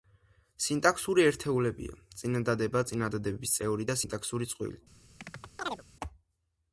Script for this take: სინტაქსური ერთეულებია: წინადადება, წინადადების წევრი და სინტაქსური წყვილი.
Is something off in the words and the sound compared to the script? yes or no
yes